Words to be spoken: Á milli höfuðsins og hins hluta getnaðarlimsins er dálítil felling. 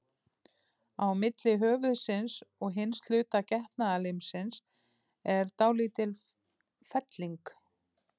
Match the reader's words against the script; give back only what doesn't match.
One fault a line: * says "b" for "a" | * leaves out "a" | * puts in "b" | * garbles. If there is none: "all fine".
all fine